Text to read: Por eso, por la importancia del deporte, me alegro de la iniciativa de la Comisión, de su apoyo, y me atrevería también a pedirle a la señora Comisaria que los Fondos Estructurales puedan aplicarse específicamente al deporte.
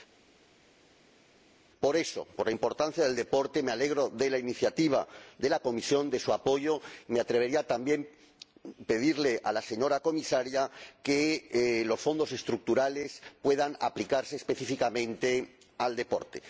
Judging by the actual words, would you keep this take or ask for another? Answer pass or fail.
pass